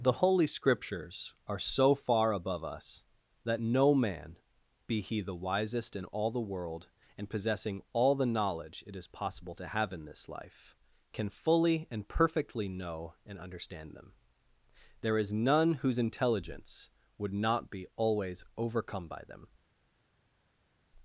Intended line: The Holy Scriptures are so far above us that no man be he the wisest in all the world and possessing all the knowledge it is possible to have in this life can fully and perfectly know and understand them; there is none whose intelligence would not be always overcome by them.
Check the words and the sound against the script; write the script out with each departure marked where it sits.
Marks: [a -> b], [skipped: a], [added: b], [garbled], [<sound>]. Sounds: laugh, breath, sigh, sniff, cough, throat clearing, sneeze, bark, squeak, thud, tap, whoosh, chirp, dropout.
The Holy Scriptures are so far above us that no man be he the wisest in all the world and possessing all the knowledge it is possible to have in this life can fully and perfectly know and understand them; there is none whose intelligence would not be always overcome by them.